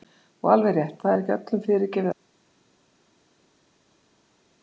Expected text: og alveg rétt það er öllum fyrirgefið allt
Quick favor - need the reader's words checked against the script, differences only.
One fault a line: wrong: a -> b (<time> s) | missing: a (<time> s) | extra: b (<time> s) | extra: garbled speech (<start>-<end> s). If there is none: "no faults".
extra: ekki (1.2 s)